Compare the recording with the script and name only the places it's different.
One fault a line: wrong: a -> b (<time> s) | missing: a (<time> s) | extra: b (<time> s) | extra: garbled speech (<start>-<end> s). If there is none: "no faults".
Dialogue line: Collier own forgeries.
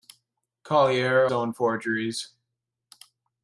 no faults